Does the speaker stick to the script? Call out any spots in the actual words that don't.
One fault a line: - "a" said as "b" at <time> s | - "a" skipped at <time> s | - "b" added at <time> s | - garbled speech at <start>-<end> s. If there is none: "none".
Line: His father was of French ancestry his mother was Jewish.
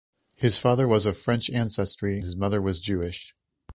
none